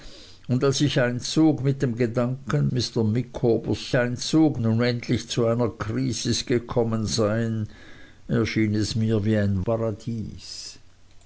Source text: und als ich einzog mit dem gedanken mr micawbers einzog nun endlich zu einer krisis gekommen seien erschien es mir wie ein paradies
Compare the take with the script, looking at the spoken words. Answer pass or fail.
pass